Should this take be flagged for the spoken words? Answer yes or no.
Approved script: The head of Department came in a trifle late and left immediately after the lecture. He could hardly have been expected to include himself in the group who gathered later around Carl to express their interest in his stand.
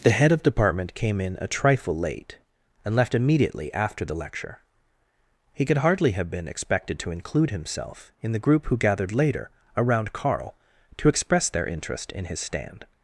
no